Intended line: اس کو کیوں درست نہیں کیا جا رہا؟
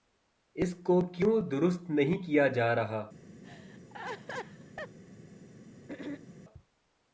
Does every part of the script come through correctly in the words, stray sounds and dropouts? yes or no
no